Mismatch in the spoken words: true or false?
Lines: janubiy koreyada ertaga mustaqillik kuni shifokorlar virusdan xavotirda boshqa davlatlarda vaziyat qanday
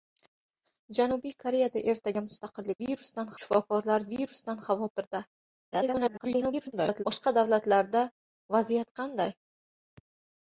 true